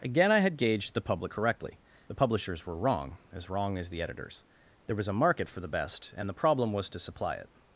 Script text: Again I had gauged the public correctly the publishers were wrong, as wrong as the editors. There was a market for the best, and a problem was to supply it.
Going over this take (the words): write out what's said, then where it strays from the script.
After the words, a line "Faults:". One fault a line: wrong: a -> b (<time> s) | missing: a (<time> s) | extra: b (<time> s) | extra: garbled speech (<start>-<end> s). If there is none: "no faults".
Again I had gauged the public correctly the publishers were wrong, as wrong as the editors. There was a market for the best, and the problem was to supply it.
Faults:
wrong: a -> the (6.3 s)